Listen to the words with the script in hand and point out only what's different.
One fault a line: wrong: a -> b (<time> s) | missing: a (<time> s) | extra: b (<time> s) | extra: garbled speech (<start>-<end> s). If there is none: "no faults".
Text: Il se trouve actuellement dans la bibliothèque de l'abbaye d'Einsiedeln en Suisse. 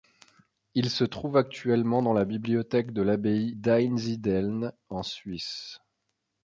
no faults